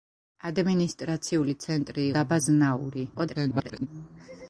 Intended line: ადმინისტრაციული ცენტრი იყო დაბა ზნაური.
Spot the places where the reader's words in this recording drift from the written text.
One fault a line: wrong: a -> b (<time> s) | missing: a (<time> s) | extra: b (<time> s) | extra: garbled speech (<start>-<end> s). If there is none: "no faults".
missing: იყო (2.1 s)
extra: garbled speech (3.1-3.9 s)